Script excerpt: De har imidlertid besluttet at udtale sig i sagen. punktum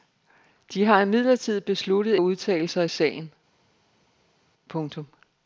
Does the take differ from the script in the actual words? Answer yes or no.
no